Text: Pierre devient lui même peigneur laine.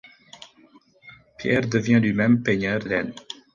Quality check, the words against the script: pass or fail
pass